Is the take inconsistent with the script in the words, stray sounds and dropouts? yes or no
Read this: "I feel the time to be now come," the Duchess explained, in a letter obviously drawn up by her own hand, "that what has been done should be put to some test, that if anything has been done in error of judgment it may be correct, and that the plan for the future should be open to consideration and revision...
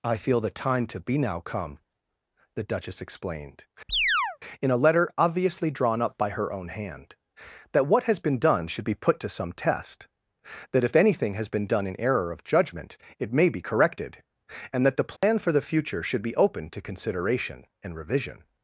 yes